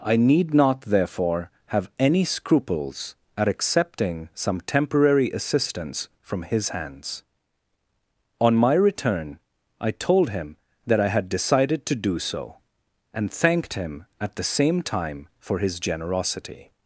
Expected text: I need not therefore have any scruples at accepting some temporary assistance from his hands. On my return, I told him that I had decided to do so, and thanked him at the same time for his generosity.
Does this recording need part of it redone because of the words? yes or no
no